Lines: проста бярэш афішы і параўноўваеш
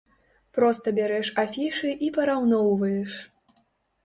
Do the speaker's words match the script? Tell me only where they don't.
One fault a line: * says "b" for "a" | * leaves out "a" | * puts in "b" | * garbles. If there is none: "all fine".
all fine